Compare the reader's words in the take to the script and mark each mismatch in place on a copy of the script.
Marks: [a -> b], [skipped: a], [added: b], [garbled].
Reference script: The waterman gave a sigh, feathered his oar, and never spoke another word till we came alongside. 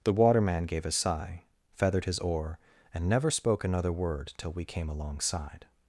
The waterman gave a sigh, feathered his oar, and never spoke another word till we came alongside.